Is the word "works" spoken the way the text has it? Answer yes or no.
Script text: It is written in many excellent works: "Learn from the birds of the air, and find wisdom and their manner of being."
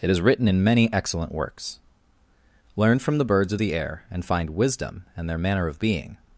yes